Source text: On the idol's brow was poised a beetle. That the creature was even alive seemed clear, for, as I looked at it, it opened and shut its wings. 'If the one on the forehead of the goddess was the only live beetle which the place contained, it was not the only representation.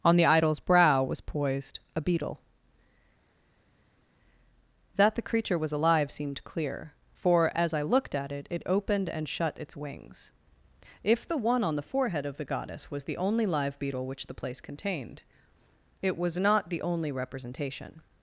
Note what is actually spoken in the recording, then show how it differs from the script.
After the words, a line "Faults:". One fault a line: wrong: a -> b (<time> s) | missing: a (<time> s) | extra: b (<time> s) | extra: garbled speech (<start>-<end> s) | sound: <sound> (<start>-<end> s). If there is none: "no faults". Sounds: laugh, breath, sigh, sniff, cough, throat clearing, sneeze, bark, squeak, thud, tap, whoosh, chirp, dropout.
On the idol's brow was poised a beetle. That the creature was alive seemed clear, for, as I looked at it, it opened and shut its wings. 'If the one on the forehead of the goddess was the only live beetle which the place contained, it was not the only representation.
Faults:
missing: even (5.7 s)